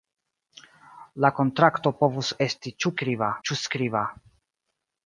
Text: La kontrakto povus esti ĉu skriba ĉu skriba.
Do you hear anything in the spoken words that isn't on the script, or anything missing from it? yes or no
no